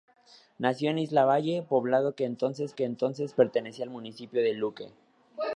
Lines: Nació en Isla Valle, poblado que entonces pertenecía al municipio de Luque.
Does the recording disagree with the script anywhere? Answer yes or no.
yes